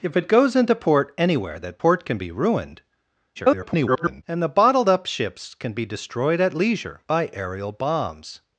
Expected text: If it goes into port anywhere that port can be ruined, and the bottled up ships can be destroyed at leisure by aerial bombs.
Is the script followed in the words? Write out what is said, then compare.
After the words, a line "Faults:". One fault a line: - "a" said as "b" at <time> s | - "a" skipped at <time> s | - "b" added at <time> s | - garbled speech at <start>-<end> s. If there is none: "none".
If it goes into port anywhere that port can be ruined, [garbled] and the bottled up ships can be destroyed at leisure by aerial bombs.
Faults:
- garbled speech at 3.4-4.2 s